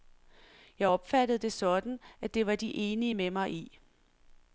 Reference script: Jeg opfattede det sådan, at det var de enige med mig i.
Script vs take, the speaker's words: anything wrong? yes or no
no